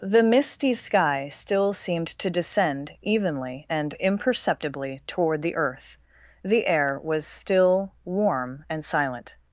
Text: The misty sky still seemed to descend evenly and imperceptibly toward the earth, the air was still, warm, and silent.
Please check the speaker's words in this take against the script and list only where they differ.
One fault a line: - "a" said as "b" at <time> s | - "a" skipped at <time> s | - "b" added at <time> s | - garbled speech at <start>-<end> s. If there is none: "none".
none